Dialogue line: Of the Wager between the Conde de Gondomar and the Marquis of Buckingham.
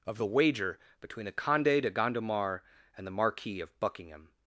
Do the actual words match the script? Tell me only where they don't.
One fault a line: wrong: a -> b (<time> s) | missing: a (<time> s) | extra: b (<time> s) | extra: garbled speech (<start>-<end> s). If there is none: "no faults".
no faults